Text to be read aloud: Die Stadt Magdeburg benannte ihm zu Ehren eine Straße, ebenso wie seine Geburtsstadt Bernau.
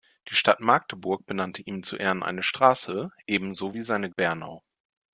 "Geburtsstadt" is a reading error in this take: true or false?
true